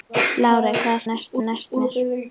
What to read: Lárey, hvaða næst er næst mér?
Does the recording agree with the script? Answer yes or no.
yes